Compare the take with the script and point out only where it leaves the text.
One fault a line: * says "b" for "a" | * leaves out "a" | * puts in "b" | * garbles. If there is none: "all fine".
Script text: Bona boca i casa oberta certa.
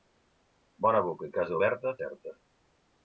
all fine